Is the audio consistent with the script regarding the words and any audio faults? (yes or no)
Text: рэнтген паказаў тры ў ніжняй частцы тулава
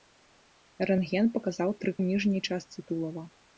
yes